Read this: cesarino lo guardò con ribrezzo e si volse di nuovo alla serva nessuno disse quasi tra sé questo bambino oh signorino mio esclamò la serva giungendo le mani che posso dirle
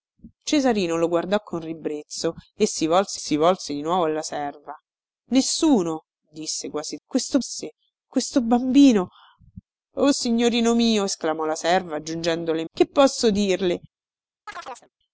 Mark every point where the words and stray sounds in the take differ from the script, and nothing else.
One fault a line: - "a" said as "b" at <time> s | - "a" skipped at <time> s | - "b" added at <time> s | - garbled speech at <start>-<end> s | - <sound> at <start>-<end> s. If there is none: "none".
- "si volse" added at 3.1 s
- "tra" said as "questo" at 7.0 s
- "mani" skipped at 12.6 s
- chirp at 14.5-14.9 s